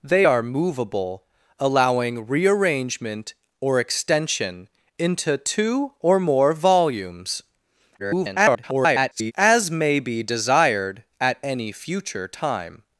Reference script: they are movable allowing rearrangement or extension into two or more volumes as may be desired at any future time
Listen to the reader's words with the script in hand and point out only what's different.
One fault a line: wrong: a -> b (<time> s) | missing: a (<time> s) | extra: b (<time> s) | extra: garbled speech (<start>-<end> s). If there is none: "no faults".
extra: garbled speech (8.0-9.3 s)